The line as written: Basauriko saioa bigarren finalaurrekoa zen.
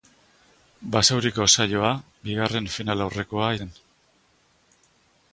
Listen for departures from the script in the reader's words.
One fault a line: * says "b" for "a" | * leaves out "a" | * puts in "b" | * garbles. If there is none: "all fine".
all fine